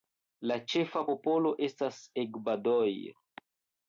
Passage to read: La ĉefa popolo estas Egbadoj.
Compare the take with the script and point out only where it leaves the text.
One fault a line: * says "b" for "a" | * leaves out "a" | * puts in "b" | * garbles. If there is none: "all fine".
all fine